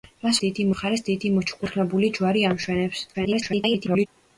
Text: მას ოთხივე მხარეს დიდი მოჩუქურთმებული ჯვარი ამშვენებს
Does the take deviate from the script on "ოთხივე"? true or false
true